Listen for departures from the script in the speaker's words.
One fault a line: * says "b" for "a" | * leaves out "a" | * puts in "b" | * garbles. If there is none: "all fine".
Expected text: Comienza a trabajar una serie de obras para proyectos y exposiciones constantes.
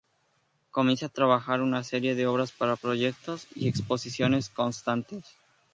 all fine